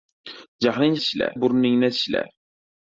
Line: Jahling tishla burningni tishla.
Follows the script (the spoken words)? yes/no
yes